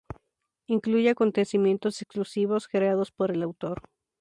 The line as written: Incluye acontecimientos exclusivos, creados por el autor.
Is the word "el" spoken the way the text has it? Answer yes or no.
yes